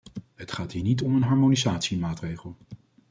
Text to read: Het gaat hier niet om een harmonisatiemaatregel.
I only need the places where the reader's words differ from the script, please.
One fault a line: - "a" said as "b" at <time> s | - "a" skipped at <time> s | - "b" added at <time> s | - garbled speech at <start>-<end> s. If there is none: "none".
none